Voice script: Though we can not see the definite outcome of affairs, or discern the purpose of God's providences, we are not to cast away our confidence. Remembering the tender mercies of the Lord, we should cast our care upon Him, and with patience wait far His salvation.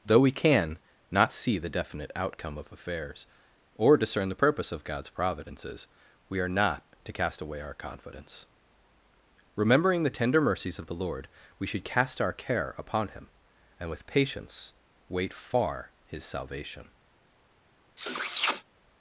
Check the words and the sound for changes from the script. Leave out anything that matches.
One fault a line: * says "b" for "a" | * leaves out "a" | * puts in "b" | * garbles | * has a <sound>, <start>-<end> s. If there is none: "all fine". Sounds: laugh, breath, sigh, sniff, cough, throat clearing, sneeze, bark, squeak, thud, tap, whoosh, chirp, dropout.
* has a sniff, 18.0-18.6 s